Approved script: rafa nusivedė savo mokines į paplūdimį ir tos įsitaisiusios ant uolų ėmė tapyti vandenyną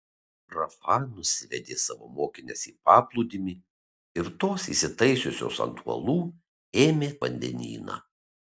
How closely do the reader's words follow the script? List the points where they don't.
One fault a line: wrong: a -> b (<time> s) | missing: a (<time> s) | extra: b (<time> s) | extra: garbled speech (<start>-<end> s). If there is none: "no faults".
missing: tapyti (7.1 s)